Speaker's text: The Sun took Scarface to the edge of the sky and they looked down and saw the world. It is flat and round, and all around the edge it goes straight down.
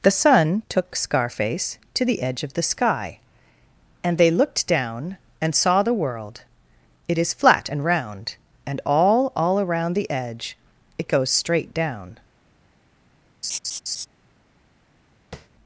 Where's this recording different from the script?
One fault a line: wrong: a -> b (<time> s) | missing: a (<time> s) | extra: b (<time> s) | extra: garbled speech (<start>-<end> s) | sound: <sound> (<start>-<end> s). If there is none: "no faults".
extra: all (9.3 s)
sound: laugh (13.4-14.1 s)
sound: tap (15.3-15.5 s)